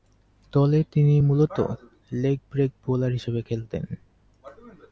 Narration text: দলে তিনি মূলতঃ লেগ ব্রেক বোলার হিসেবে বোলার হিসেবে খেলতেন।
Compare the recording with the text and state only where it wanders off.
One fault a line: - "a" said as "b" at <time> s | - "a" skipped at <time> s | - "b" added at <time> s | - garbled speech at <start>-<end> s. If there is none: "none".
- "বোলার হিসেবে" skipped at 3.4 s